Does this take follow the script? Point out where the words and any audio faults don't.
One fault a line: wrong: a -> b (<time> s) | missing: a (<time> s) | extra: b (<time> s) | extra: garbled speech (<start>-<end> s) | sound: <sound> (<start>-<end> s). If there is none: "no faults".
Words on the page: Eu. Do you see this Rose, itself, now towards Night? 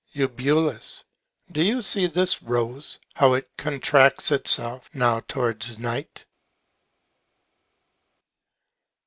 extra: how it contracts (3.1 s)